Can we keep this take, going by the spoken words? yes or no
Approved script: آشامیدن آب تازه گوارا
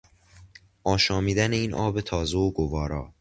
no